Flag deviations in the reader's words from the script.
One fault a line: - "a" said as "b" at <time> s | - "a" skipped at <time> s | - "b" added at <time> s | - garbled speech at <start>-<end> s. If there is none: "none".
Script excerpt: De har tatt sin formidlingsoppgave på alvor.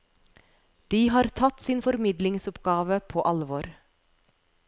none